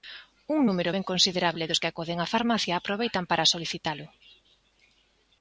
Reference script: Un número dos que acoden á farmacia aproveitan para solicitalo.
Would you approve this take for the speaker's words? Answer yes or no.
no